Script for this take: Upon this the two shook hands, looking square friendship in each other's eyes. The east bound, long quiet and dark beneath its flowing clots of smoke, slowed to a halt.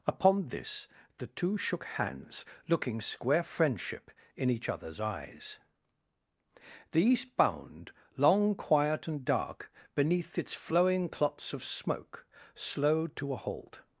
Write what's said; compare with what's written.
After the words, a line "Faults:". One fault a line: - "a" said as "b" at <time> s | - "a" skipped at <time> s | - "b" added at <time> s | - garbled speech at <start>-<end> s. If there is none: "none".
Upon this the two shook hands, looking square friendship in each other's eyes. The east bound, long quiet and dark beneath its flowing clots of smoke, slowed to a halt.
Faults:
none